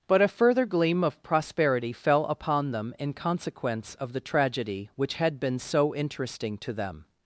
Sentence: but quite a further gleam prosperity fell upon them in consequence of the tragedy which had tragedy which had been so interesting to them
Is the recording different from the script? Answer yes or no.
yes